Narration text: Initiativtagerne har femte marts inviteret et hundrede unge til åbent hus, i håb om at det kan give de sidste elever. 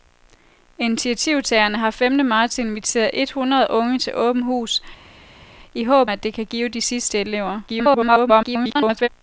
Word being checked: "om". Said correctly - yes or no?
no